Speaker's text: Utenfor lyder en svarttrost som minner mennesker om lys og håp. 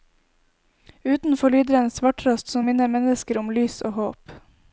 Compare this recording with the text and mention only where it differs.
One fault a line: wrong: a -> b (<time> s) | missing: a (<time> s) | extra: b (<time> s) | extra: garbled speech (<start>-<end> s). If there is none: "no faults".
no faults